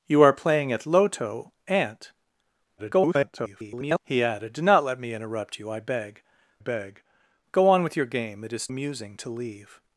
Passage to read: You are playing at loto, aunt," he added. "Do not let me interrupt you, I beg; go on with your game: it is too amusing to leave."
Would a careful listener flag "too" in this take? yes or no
yes